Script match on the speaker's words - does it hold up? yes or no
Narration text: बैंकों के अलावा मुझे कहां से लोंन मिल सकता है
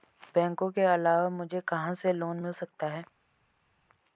yes